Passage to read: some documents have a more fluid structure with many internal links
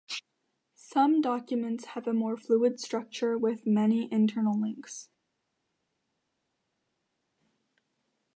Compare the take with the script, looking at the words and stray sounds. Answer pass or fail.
pass